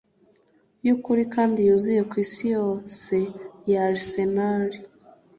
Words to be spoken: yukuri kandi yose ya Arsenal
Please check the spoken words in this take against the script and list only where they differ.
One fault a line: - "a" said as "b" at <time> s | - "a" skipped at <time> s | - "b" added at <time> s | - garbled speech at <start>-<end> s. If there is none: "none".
- "yuzuye kwisi" added at 1.7 s